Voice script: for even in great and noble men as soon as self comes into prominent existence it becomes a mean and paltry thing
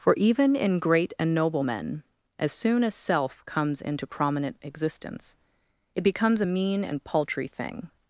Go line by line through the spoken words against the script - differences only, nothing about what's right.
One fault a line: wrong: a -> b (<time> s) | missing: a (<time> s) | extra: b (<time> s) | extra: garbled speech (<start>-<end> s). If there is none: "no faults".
no faults